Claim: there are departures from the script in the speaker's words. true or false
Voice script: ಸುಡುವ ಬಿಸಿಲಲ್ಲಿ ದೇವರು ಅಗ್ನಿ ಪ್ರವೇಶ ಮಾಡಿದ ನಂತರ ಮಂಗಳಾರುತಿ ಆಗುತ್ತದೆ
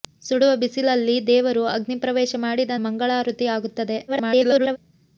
true